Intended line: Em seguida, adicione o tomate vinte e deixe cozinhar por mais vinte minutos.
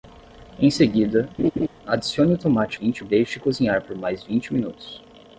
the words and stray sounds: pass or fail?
fail